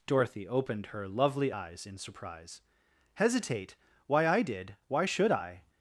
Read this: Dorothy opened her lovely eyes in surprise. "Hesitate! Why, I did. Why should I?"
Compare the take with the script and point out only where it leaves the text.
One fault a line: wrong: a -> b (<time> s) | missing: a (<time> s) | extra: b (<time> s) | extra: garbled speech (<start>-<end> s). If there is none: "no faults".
no faults